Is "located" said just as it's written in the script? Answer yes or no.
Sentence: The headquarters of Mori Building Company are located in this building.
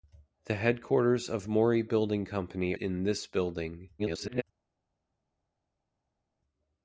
no